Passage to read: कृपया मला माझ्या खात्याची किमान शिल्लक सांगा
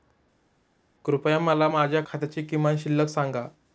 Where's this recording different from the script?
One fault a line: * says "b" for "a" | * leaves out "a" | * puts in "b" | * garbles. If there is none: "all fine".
all fine